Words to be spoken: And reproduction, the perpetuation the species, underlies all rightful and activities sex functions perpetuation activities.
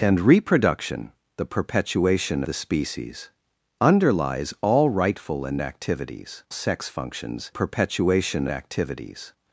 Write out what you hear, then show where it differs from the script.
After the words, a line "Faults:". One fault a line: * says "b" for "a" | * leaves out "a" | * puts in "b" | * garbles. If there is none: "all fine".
And reproduction, the perpetuation the species, underlies all rightful and activities sex functions perpetuation activities.
Faults:
all fine